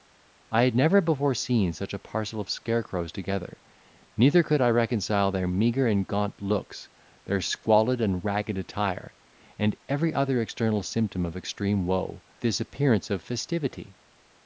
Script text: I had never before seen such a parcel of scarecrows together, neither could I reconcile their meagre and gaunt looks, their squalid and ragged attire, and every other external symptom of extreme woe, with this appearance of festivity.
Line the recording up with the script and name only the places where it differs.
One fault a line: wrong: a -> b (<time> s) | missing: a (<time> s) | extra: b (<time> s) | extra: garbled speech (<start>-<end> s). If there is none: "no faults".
missing: with (12.2 s)